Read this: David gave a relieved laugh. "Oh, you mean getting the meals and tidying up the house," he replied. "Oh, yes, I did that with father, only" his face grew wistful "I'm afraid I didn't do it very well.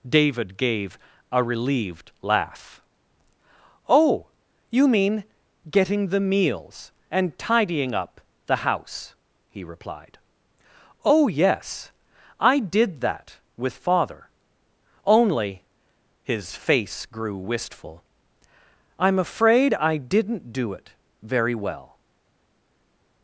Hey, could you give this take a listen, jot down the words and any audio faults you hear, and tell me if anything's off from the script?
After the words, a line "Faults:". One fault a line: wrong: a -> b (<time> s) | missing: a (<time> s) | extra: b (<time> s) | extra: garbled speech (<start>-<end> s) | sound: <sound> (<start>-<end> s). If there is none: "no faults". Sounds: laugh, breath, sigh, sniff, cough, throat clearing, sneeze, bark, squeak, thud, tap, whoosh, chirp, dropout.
David gave a relieved laugh. "Oh, you mean getting the meals and tidying up the house," he replied. "Oh, yes, I did that with father, only" his face grew wistful "I'm afraid I didn't do it very well.
Faults:
no faults